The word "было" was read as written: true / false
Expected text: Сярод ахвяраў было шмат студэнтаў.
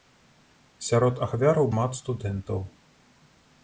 false